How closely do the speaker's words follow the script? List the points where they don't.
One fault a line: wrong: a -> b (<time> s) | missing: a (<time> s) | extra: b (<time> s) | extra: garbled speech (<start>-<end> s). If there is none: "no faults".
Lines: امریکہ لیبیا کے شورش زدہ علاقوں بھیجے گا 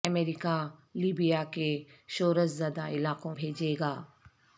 no faults